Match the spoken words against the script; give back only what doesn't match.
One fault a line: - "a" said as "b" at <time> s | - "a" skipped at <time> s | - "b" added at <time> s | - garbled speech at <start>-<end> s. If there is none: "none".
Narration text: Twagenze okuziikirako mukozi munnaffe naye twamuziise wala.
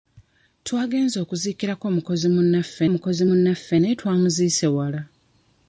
- "mukozi munnaffe" added at 2.9 s